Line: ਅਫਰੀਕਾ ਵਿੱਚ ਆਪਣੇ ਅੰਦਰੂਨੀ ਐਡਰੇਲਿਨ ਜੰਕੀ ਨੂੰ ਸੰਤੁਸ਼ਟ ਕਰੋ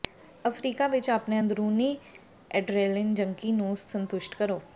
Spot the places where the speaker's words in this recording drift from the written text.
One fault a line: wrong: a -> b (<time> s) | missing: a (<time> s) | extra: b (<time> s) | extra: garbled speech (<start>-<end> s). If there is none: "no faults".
no faults